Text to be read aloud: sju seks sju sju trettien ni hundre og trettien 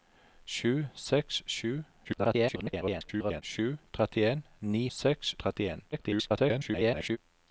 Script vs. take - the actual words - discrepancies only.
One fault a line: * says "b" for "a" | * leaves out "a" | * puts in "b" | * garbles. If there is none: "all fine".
* garbles
* says "seks" for "hundre"
* garbles